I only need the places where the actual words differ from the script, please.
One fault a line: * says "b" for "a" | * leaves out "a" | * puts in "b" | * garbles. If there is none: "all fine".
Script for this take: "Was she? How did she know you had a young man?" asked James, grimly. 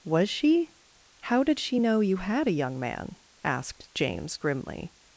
all fine